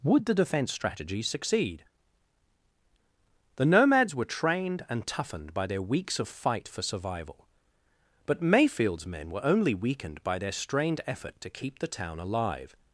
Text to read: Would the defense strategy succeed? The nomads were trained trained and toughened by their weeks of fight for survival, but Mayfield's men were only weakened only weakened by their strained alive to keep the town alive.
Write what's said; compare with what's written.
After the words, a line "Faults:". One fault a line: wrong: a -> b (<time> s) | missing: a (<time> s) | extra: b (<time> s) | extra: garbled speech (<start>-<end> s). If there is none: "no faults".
Would the defense strategy succeed? The nomads were trained and toughened by their weeks of fight for survival, but Mayfield's men were only weakened by their strained effort to keep the town alive.
Faults:
missing: trained (4.8 s)
missing: only weakened (10.2 s)
wrong: alive -> effort (11.1 s)